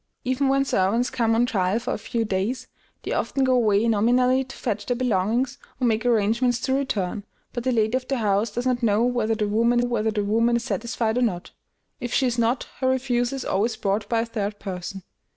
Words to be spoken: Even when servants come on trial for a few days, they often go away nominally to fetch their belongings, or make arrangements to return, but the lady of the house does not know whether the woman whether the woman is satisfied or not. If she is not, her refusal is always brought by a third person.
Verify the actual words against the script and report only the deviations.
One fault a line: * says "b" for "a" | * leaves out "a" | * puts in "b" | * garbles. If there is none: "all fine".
all fine